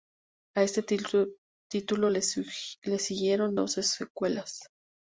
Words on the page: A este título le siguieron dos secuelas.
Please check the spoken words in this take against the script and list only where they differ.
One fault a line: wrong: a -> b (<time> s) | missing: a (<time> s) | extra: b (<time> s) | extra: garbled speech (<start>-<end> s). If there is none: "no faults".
no faults